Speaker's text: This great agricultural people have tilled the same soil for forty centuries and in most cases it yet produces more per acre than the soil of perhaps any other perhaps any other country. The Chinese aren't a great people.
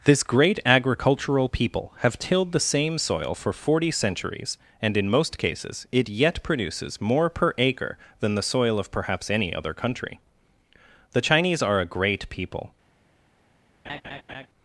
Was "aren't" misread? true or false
true